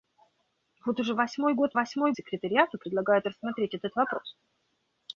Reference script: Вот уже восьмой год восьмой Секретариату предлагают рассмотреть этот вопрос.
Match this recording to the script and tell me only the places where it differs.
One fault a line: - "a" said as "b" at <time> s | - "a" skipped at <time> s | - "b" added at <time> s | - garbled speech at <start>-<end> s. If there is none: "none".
none